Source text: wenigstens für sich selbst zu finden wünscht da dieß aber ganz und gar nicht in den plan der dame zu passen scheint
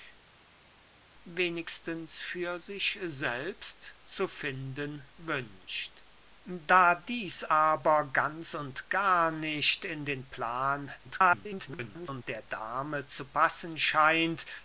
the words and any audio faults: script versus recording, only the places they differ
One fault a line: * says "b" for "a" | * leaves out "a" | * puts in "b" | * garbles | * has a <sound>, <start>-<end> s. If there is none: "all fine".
* garbles